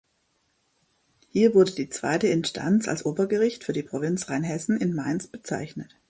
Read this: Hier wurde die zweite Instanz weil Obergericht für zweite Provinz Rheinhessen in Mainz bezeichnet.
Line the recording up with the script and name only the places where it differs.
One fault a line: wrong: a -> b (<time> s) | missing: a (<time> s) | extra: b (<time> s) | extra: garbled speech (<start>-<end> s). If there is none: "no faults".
wrong: weil -> als (2.9 s)
wrong: zweite -> die (3.7 s)